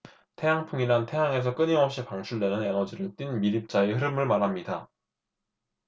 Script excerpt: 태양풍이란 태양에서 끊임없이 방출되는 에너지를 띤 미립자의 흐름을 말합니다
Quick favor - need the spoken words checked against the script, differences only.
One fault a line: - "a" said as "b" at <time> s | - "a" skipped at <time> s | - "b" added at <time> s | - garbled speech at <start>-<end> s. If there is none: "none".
none